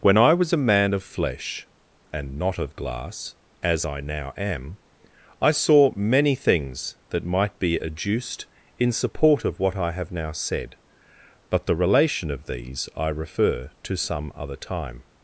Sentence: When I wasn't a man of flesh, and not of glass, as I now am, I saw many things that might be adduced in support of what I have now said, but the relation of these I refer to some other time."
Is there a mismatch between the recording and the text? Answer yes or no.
yes